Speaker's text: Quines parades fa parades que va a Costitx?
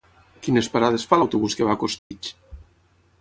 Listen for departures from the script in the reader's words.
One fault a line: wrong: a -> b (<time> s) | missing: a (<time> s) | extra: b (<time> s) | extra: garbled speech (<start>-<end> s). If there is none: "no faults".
wrong: parades -> l'autobús (1.2 s)